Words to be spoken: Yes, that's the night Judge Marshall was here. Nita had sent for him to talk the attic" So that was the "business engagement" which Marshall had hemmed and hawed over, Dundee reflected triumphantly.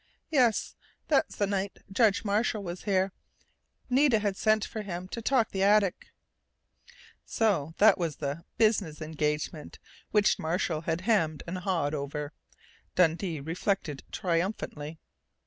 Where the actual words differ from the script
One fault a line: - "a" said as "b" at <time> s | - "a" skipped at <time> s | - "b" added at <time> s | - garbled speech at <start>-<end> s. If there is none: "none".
none